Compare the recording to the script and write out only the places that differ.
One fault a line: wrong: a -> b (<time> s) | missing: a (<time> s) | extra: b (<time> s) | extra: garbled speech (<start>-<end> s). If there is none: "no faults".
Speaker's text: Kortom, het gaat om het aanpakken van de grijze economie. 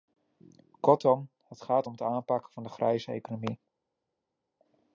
no faults